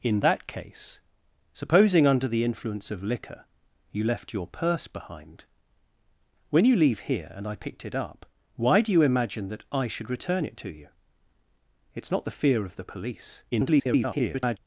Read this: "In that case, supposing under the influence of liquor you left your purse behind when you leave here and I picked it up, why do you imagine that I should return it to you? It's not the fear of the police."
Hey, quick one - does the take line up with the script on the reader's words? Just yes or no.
no